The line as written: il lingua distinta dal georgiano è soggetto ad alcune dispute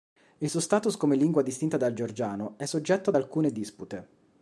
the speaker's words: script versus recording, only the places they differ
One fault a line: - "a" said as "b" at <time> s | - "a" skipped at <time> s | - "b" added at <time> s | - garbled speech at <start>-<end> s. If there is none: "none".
- "suo status come" added at 0.5 s